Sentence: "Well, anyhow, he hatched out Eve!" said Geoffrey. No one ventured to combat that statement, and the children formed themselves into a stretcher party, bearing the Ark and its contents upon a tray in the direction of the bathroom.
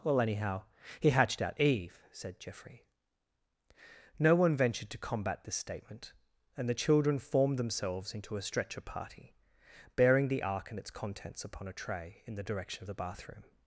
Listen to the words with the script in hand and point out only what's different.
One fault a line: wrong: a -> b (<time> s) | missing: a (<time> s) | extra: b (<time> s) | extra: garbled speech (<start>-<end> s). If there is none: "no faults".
wrong: that -> this (5.4 s)